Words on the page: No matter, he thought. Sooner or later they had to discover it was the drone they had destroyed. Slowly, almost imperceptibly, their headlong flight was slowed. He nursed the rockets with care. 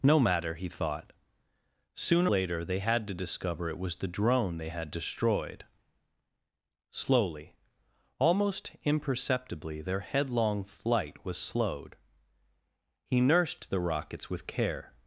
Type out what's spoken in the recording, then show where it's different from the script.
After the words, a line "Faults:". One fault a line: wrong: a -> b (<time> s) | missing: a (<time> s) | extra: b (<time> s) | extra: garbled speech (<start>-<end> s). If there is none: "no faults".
No matter, he thought. Sooner later they had to discover it was the drone they had destroyed. Slowly, almost imperceptibly, their headlong flight was slowed. He nursed the rockets with care.
Faults:
missing: or (2.3 s)